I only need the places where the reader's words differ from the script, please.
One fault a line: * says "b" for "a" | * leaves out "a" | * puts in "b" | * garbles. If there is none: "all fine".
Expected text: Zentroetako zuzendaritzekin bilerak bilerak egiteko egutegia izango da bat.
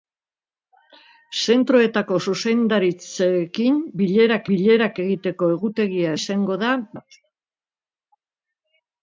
all fine